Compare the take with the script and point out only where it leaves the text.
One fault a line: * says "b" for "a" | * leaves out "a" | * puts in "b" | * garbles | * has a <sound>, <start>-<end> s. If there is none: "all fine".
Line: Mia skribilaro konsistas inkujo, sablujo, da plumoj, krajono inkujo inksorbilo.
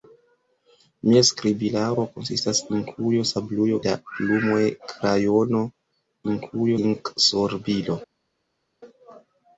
all fine